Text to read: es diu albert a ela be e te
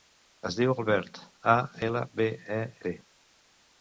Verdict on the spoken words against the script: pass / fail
pass